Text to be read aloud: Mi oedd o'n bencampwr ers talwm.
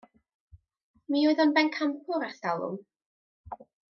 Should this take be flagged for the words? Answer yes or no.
no